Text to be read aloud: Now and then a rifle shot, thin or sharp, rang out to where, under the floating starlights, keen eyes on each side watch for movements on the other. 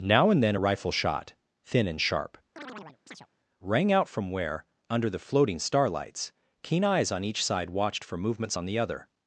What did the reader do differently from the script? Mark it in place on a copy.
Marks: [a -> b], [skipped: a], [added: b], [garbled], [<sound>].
Now and then a rifle shot, thin [or -> and] sharp, [chirp] rang out [to -> from] where, under the floating starlights, keen eyes on each side [watch -> watched] for movements on the other.